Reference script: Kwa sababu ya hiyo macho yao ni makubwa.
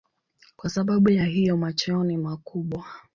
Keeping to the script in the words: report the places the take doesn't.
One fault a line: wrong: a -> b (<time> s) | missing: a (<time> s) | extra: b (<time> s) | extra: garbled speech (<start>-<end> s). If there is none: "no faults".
no faults